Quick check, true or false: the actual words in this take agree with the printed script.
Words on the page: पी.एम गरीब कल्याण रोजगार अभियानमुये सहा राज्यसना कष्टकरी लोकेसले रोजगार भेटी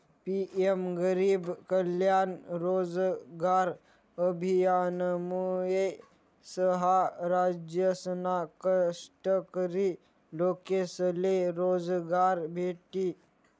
true